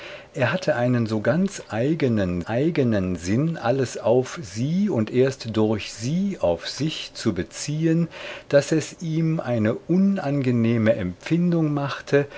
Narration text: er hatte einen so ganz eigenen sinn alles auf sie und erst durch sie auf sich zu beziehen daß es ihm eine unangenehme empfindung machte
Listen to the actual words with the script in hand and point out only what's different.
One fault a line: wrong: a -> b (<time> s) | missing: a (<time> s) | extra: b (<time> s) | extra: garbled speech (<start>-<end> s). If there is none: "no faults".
extra: eigenen (2.5 s)